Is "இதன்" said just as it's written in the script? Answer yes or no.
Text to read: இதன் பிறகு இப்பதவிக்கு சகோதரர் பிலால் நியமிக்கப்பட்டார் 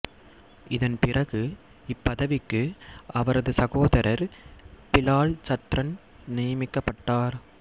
yes